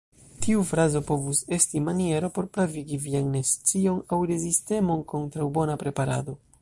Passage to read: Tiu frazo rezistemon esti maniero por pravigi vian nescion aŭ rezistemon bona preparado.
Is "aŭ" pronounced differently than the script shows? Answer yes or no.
no